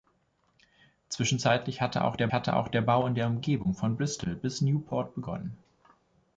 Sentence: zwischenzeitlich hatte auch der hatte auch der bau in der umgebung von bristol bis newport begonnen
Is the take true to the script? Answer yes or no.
yes